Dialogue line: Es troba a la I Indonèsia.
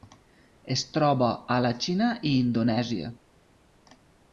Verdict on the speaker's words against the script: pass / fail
fail